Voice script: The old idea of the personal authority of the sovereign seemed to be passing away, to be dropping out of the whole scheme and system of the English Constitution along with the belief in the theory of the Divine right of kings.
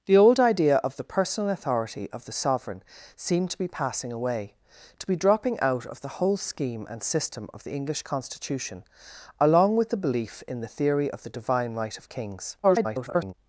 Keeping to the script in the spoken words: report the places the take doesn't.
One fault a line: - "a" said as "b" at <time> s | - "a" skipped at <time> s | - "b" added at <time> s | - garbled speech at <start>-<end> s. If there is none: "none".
- garbled speech at 12.6-13.3 s